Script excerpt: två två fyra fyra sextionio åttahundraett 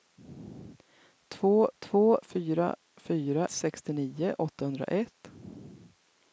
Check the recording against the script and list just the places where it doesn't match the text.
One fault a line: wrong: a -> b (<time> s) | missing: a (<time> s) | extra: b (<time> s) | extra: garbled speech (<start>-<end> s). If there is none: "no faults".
no faults